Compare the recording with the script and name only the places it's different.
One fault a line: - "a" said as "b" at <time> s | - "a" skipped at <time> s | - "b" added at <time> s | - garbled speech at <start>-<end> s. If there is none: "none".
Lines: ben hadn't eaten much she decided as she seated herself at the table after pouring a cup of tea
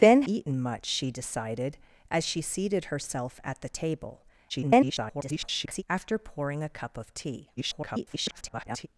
- "hadn't" skipped at 0.2 s
- garbled speech at 4.5-5.8 s
- garbled speech at 7.6-8.9 s